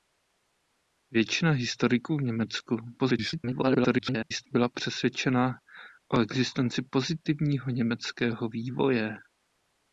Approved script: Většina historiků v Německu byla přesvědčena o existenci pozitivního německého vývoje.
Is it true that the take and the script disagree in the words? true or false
true